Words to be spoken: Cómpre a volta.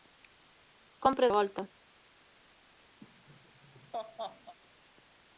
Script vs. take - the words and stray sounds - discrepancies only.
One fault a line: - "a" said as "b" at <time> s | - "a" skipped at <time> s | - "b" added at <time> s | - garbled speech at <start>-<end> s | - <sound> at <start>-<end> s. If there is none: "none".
- laugh at 3.0-4.6 s